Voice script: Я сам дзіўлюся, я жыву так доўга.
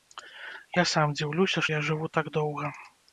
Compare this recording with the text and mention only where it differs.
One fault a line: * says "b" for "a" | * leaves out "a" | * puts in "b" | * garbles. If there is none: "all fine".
all fine